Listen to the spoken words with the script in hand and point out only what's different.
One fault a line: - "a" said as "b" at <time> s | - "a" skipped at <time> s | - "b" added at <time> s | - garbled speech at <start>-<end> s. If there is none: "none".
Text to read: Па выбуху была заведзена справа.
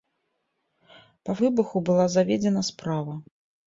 none